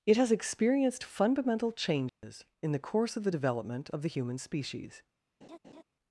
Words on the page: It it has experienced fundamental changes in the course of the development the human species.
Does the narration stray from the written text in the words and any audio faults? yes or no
yes